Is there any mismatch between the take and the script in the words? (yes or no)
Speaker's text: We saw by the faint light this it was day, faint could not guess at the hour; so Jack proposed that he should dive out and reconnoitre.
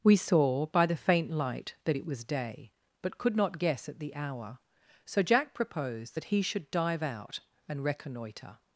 yes